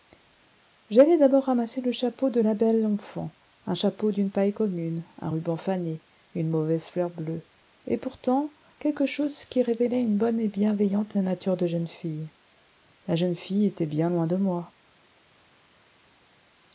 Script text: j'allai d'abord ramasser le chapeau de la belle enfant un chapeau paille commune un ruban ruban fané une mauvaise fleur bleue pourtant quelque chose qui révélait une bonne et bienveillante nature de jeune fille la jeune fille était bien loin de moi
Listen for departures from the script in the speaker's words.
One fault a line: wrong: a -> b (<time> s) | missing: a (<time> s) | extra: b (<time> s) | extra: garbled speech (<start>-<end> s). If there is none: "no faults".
extra: d'une (4.1 s)
missing: ruban (5.6 s)
extra: et (7.9 s)